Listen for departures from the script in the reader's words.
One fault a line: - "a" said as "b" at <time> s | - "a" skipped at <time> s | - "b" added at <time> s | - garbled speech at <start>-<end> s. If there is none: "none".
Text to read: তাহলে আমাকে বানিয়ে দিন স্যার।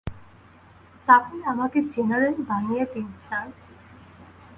- "জেনারেল" added at 1.9 s